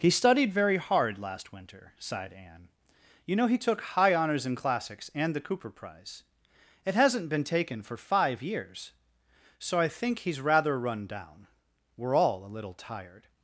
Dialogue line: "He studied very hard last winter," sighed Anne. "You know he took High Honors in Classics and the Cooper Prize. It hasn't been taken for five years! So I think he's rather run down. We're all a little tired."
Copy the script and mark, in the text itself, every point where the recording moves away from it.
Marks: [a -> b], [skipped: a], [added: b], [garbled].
"He studied very hard last winter," sighed Anne. "You know he took High Honors in Classics and the Cooper Prize. It hasn't been taken for five years! So I think he's rather run down. We're all a little tired."